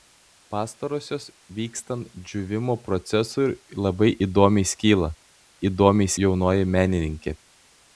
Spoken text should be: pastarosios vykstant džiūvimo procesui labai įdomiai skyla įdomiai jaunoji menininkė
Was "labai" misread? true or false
false